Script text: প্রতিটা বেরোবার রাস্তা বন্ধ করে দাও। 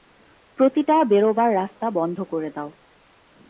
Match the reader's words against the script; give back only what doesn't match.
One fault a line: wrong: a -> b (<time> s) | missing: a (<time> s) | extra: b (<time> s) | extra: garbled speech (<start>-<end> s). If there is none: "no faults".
no faults